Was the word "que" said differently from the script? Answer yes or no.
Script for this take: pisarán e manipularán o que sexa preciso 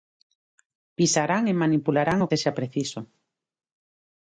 yes